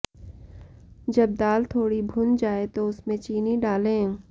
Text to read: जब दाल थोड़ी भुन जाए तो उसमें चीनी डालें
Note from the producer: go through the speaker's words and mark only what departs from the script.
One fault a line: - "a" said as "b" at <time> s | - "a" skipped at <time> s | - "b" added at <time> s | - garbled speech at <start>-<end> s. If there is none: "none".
none